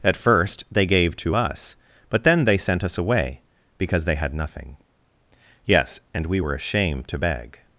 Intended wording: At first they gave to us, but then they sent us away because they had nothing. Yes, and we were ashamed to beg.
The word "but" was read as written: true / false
true